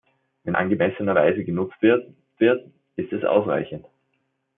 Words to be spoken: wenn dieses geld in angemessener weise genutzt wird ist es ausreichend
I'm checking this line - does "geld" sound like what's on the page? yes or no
no